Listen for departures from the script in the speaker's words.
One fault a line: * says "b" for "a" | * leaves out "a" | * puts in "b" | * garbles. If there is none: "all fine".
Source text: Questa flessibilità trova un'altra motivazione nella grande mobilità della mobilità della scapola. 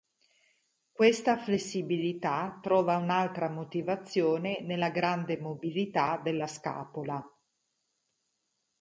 * leaves out "mobilità della"